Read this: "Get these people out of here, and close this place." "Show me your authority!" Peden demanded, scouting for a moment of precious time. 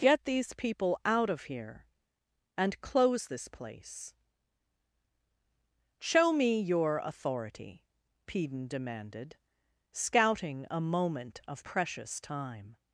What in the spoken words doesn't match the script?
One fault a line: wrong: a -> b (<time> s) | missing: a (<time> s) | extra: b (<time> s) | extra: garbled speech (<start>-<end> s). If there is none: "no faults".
missing: for (10.6 s)